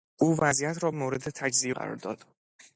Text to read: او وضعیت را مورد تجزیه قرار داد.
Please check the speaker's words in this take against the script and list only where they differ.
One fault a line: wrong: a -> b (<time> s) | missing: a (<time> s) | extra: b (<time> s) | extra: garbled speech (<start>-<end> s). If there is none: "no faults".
no faults